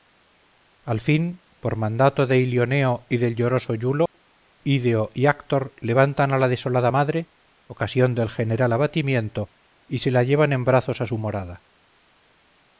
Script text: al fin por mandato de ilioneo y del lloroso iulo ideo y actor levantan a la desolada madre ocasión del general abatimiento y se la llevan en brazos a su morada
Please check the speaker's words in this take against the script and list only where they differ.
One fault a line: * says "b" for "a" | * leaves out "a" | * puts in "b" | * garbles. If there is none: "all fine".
all fine